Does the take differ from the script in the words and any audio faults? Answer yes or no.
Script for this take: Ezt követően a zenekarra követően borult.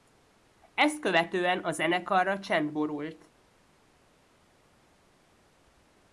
yes